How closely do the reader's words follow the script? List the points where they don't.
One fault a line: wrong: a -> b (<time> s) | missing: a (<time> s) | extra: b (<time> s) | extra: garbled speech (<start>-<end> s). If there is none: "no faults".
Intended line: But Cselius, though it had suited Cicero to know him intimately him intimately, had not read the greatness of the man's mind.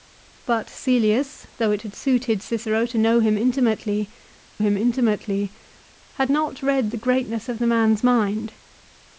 no faults